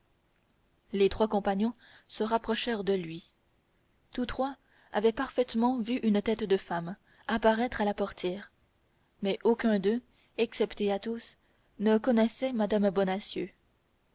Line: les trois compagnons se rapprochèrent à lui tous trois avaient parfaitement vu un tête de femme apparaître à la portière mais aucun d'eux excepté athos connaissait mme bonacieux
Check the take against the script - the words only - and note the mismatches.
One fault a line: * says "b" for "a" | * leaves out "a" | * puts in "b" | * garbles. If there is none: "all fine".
* says "de" for "à"
* says "une" for "un"
* puts in "ne"